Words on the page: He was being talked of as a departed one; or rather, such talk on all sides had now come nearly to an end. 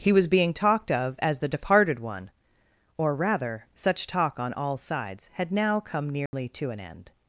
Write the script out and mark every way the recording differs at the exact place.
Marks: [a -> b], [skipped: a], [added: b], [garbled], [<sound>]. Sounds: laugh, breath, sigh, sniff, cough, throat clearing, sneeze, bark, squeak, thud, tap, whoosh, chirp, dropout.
He was being talked of as [a -> the] departed one; or rather, such talk on all sides had now come nearly [dropout] to an end.